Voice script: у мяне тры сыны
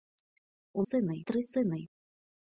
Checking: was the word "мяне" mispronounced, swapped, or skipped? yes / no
yes